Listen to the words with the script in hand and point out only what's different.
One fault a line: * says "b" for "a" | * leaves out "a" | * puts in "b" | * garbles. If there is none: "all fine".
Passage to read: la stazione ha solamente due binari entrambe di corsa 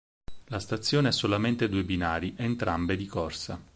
all fine